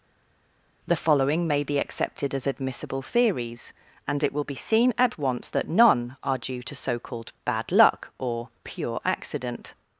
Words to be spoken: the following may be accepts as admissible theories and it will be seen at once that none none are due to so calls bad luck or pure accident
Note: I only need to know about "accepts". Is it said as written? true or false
false